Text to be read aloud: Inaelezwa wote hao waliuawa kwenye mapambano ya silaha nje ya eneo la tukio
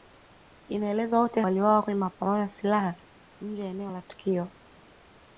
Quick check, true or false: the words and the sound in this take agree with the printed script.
false